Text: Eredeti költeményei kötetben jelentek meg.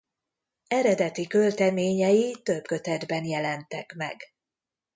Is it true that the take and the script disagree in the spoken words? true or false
true